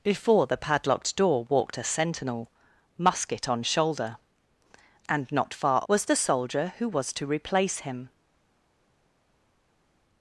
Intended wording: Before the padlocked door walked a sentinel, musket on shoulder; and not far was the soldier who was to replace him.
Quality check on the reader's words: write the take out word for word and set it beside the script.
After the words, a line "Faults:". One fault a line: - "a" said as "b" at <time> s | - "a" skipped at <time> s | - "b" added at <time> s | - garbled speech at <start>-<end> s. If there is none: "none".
Before the padlocked door walked a sentinel, musket on shoulder; and not far was the soldier who was to replace him.
Faults:
none